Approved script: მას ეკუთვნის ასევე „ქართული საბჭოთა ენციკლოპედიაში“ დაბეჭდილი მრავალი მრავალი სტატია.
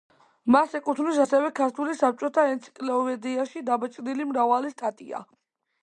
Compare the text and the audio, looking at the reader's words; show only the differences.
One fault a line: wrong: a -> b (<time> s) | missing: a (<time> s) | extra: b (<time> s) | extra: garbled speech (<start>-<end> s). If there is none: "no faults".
missing: მრავალი (4.8 s)